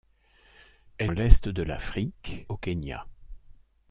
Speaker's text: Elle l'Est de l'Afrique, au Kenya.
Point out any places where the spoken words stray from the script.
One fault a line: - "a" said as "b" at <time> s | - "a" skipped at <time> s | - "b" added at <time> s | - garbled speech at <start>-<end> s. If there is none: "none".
none